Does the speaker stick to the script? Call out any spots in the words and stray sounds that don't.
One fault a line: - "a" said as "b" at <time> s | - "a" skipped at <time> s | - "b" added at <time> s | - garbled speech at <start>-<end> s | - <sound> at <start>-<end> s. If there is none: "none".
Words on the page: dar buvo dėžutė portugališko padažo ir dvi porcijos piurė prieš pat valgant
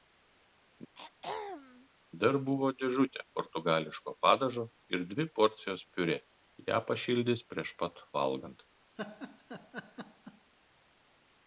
- throat clearing at 0.9-1.9 s
- "ją pašildys" added at 6.7 s
- laugh at 9.0-10.5 s